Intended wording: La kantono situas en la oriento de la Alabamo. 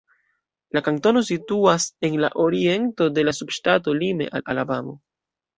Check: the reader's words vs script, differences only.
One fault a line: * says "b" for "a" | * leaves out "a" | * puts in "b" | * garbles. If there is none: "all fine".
* puts in "subŝtato lime al"